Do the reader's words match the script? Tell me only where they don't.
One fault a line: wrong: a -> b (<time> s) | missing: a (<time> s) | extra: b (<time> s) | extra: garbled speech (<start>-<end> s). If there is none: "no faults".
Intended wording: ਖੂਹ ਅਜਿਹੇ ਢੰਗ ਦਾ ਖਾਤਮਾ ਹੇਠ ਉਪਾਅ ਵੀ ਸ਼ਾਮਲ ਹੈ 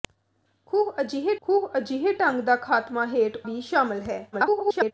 extra: ਖੂਹ ਅਜਿਹੇ (1.4 s)
missing: ਉਪਾਅ (3.4 s)
extra: garbled speech (4.3-4.9 s)